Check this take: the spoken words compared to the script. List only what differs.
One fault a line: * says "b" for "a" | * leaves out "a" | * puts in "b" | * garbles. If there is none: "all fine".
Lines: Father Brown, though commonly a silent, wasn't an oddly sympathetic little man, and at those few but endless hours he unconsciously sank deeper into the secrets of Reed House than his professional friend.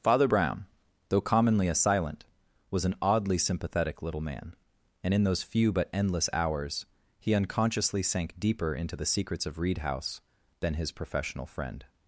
* says "was" for "wasn't"
* says "in" for "at"